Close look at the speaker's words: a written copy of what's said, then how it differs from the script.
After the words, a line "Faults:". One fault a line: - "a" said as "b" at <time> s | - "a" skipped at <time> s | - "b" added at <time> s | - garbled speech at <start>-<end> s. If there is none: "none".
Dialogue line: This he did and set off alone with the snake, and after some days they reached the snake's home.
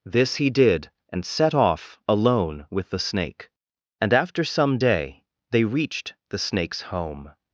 This he did and set off alone with the snake, and after some day they reached the snake's home.
Faults:
- "days" said as "day" at 4.8 s